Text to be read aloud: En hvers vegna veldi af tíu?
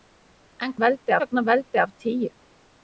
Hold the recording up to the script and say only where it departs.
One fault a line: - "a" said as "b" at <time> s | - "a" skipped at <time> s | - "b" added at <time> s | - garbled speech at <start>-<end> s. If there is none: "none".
- "hvers" said as "veldi" at 0.8 s